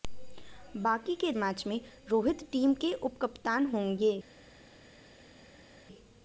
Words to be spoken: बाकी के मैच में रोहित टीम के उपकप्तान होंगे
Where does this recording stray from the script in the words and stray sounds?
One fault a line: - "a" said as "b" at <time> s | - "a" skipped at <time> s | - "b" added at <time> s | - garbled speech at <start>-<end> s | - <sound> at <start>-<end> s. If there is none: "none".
none